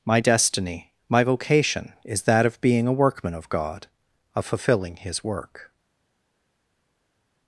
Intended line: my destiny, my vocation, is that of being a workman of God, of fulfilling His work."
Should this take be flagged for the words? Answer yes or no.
no